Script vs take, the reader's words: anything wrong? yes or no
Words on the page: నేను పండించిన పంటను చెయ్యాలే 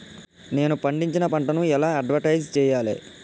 yes